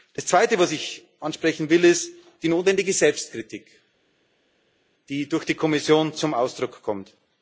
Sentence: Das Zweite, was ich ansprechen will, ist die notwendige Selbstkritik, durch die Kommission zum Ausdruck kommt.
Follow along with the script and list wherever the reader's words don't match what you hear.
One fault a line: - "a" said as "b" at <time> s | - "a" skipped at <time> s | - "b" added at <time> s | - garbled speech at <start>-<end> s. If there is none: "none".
- "die" added at 5.1 s